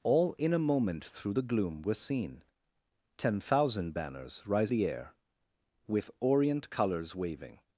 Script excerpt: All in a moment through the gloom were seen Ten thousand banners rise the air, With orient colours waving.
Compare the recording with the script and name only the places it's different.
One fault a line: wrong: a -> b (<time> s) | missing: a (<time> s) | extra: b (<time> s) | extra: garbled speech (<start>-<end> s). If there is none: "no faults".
no faults